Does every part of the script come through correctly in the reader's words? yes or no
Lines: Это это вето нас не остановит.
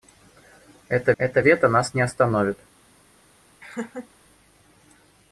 yes